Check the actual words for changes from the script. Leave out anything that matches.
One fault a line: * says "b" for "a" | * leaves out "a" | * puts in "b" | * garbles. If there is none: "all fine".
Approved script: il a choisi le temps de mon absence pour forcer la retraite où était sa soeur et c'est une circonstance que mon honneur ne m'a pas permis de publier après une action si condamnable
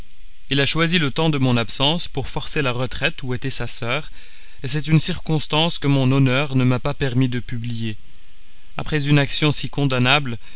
all fine